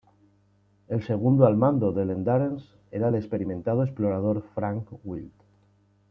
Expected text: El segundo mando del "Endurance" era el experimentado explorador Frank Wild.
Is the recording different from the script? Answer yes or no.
yes